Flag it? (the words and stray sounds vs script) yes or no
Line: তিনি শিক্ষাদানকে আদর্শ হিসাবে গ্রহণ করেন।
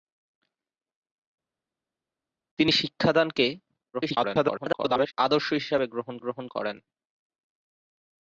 yes